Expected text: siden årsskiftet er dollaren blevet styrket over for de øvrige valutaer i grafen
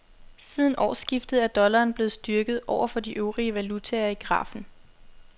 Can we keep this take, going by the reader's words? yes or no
yes